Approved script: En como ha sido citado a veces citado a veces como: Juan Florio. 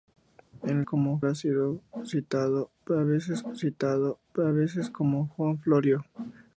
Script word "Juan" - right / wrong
right